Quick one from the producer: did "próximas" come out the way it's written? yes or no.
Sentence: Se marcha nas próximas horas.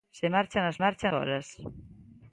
no